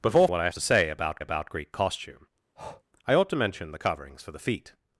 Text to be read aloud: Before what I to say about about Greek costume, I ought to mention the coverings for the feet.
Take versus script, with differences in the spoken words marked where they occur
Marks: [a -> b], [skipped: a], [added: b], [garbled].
Before what I to say about about Greek costume, I ought to mention the coverings for the feet.